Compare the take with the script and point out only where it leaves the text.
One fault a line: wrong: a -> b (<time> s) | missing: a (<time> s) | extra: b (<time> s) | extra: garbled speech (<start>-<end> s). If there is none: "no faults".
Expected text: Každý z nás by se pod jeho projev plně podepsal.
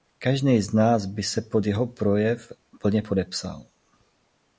no faults